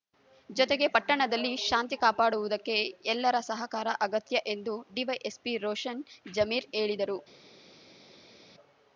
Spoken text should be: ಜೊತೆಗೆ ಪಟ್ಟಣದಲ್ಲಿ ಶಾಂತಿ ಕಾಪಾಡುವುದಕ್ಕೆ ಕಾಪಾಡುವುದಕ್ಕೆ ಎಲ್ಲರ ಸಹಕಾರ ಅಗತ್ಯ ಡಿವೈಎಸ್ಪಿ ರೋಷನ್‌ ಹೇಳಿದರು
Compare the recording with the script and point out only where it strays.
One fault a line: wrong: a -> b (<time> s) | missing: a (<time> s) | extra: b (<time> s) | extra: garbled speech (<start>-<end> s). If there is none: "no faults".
missing: ಕಾಪಾಡುವುದಕ್ಕೆ (2.8 s)
extra: ಎಂದು (4.5 s)
extra: ಜಮೀರ್ (6.3 s)